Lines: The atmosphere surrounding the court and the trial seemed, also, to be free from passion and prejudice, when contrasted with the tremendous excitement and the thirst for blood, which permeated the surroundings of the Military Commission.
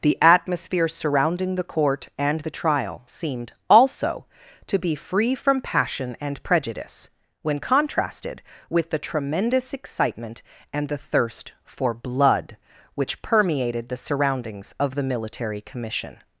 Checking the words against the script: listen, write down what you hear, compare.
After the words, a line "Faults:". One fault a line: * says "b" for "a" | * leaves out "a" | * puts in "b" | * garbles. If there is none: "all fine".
The atmosphere surrounding the court and the trial seemed, also, to be free from passion and prejudice, when contrasted with the tremendous excitement and the thirst for blood, which permeated the surroundings of the Military Commission.
Faults:
all fine